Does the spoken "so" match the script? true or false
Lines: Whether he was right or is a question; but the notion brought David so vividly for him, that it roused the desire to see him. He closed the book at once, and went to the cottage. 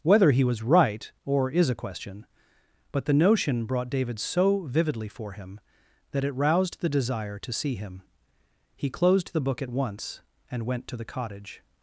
true